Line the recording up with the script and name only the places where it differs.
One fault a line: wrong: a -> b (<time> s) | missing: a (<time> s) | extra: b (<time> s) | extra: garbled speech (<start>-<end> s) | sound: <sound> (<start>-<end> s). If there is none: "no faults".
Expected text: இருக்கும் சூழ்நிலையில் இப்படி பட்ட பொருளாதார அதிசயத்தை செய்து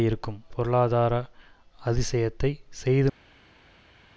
missing: சூழ்நிலையில் இப்படி பட்ட (0.4 s)